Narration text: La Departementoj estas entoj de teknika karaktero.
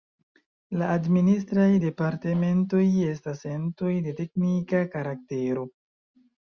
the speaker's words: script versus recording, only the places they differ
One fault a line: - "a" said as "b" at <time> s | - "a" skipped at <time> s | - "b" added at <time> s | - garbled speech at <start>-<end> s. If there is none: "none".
- "Administraj" added at 0.9 s